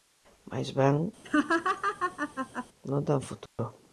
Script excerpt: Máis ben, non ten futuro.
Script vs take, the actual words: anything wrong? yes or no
no